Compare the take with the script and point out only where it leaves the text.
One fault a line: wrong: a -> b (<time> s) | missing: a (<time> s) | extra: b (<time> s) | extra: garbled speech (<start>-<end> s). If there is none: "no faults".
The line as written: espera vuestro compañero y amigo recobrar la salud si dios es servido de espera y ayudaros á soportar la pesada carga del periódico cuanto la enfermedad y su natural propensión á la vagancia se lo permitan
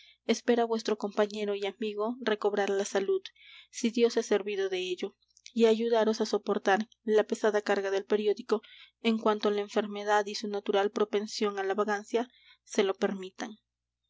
wrong: espera -> ello (4.8 s)
extra: en (9.0 s)